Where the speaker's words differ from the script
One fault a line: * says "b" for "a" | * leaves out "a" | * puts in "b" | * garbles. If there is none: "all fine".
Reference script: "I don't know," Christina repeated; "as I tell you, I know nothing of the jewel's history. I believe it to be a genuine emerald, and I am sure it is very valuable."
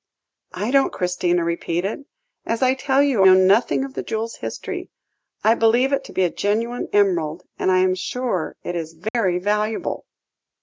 * leaves out "know"
* leaves out "I"